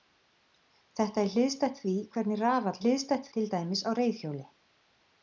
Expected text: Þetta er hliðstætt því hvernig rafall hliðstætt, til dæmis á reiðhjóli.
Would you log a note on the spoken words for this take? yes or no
no